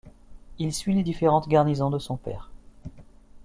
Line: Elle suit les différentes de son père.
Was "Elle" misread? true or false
true